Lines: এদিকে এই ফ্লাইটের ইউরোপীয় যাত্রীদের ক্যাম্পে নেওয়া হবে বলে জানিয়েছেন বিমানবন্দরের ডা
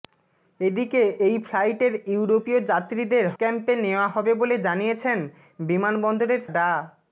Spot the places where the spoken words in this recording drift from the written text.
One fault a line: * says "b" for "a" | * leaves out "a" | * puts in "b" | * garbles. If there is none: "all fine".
all fine